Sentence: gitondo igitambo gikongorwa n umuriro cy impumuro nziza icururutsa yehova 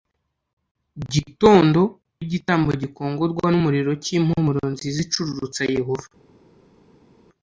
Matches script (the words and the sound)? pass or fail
pass